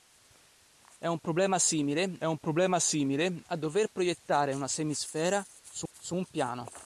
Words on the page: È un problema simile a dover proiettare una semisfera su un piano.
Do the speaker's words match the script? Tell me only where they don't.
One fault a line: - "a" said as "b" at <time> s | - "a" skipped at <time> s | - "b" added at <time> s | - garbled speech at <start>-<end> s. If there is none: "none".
- "un problema simile" added at 2.2 s
- "su" added at 5.9 s